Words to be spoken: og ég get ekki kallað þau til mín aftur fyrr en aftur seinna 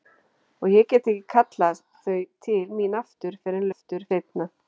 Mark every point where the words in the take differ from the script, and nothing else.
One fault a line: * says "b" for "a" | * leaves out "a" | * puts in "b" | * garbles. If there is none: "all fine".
all fine